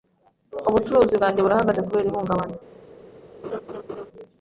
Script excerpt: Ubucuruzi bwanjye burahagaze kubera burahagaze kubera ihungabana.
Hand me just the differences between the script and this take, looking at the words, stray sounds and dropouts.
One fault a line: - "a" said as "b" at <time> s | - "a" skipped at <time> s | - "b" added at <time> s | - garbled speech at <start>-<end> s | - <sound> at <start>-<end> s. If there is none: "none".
- "burahagaze kubera" skipped at 2.1 s
- laugh at 3.4-4.1 s